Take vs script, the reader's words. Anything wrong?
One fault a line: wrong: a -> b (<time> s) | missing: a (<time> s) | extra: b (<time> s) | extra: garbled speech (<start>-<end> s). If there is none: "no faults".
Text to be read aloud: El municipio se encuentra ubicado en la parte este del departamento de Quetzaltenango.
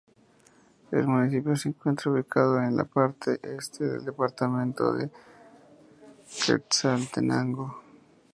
no faults